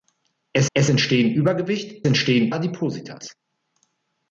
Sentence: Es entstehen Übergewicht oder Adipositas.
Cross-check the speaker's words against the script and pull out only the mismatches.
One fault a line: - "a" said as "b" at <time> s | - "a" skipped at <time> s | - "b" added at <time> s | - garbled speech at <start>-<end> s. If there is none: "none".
- "es" added at 0.7 s
- "oder" said as "entstehen" at 2.1 s